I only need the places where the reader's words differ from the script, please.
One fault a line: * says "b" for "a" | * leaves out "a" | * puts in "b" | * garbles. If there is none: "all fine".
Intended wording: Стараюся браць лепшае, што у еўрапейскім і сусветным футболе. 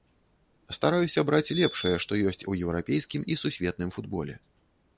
* puts in "ёсць"